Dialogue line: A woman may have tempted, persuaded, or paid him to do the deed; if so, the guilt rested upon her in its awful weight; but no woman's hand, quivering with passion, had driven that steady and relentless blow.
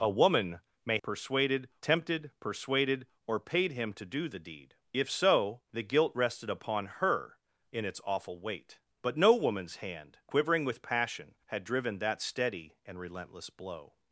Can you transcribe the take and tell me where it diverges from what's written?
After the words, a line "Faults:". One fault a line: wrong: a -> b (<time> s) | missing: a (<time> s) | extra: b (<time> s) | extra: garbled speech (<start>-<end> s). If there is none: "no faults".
A woman may persuaded tempted, persuaded, or paid him to do the deed; if so, the guilt rested upon her in its awful weight; but no woman's hand, quivering with passion, had driven that steady and relentless blow.
Faults:
wrong: have -> persuaded (1.0 s)